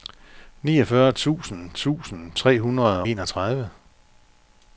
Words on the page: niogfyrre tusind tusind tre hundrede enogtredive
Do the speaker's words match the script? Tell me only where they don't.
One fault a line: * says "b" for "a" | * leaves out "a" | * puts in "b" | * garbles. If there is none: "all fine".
all fine